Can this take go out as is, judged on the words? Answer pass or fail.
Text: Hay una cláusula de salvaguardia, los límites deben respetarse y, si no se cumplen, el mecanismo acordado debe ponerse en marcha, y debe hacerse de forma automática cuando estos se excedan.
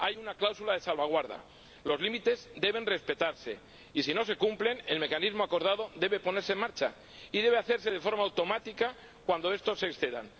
pass